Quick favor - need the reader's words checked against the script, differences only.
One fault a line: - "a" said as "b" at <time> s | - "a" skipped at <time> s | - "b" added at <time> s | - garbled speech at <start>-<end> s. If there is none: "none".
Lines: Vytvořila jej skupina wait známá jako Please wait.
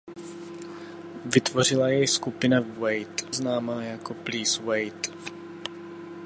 none